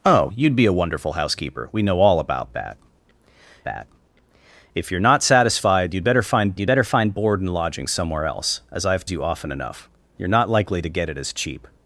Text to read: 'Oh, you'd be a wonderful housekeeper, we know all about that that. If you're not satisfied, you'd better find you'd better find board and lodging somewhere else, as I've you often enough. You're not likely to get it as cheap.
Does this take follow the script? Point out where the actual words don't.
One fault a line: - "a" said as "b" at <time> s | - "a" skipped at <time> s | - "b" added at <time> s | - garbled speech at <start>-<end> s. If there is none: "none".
none